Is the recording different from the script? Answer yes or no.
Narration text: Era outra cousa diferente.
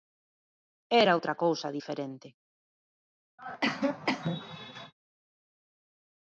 no